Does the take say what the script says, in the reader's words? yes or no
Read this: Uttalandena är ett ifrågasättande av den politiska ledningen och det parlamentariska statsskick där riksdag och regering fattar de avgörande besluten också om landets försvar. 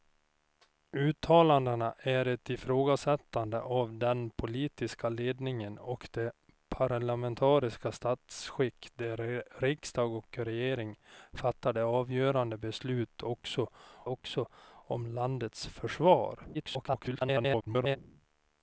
no